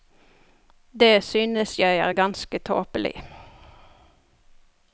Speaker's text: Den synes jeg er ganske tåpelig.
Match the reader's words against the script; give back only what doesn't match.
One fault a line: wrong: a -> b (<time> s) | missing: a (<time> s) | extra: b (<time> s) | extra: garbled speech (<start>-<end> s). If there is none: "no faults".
wrong: Den -> Det (1.0 s)